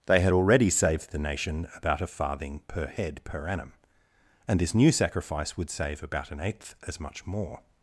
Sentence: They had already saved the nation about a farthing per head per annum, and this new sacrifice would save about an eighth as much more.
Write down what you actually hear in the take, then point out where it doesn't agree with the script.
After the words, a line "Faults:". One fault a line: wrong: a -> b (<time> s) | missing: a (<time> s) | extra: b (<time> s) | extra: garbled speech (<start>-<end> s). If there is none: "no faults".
They had already saved the nation about a farthing per head per annum, and this new sacrifice would save about an eighth as much more.
Faults:
no faults